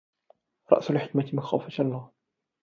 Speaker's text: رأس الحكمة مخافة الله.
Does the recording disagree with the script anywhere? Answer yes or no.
no